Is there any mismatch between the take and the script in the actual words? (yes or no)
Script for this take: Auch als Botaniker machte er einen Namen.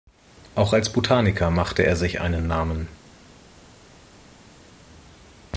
yes